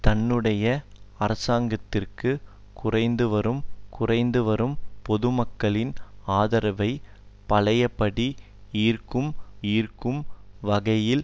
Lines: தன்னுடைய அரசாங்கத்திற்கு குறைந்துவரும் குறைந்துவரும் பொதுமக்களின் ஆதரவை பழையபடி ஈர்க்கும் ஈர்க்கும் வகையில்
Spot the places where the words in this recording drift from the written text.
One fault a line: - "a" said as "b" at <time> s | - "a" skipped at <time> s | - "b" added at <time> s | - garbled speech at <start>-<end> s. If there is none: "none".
none